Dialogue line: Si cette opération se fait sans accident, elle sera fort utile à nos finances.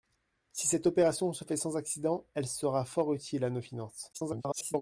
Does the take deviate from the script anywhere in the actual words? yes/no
yes